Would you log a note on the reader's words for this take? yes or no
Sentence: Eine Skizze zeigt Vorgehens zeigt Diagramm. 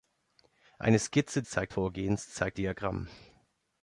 no